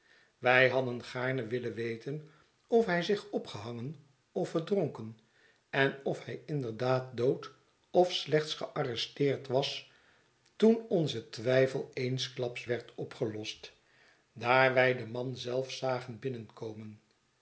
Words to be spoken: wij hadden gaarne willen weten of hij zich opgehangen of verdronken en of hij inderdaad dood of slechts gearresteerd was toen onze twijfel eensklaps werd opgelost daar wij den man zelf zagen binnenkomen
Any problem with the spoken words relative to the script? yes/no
no